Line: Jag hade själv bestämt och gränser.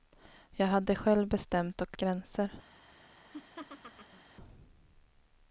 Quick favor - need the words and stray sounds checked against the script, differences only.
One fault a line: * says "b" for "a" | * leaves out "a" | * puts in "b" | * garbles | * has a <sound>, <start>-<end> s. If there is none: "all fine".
* has a laugh, 3.3-4.2 s